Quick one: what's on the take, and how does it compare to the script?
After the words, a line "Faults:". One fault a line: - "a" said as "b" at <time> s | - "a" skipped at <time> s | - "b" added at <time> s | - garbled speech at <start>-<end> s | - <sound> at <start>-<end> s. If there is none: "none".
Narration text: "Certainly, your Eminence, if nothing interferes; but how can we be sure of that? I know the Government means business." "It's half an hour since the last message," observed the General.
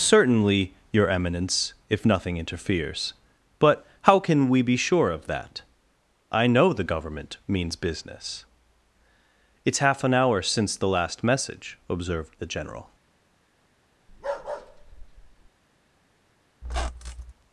"Certainly, your Eminence, if nothing interferes; but how can we be sure of that? I know the Government means business." "It's half an hour since the last message," observed the General.
Faults:
- bark at 14.1-15.5 s
- squeak at 16.6-17.3 s